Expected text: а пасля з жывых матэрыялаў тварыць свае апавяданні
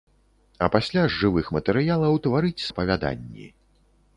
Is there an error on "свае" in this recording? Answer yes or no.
yes